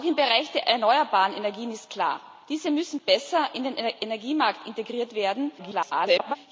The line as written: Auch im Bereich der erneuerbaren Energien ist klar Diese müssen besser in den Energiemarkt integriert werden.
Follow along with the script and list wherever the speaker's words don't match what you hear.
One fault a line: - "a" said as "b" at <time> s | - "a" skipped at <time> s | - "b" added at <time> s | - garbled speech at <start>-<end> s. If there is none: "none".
- garbled speech at 5.6-6.4 s